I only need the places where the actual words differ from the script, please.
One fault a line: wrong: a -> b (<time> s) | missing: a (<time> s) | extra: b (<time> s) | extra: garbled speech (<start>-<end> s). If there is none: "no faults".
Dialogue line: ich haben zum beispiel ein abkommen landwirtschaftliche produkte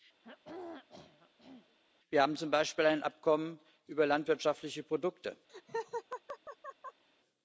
wrong: ich -> wir (2.1 s)
extra: über (3.8 s)